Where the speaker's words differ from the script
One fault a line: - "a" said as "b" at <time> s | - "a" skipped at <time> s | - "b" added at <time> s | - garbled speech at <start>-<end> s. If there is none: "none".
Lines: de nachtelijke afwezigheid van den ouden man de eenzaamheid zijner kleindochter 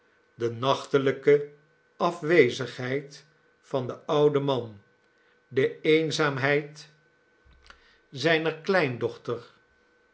none